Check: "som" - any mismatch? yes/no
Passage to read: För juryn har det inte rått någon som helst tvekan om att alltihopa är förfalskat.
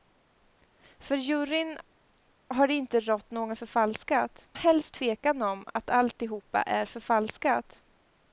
yes